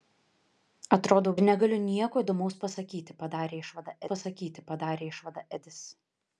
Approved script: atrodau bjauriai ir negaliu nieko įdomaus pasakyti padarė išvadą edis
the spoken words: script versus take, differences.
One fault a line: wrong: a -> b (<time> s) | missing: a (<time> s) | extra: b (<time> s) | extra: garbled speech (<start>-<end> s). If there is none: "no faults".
missing: bjauriai (1.3 s)
extra: pasakyti padarė išvadą (4.1 s)